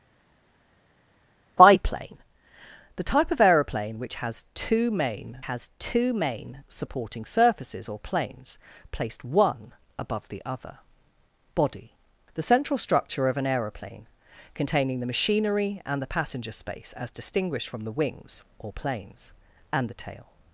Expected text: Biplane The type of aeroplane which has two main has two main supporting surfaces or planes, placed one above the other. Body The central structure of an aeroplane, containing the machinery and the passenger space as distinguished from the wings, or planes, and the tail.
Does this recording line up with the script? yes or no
yes